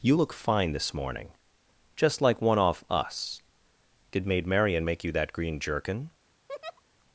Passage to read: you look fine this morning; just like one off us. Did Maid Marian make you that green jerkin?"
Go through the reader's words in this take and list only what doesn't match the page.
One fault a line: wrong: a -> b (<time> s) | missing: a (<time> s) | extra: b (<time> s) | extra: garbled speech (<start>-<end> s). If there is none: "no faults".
no faults